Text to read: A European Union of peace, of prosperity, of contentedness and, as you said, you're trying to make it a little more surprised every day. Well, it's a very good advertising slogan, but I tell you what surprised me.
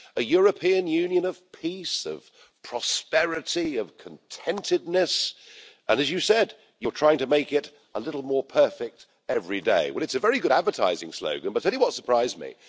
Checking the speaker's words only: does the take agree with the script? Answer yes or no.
no